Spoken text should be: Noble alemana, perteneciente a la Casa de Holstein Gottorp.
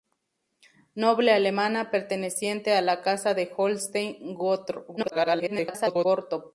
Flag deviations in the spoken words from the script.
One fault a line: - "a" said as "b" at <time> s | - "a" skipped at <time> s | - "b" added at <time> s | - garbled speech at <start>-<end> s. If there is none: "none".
- garbled speech at 5.0-6.1 s